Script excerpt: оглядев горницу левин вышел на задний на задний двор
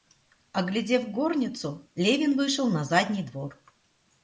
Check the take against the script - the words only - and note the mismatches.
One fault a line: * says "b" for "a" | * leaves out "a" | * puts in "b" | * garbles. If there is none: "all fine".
* leaves out "на задний"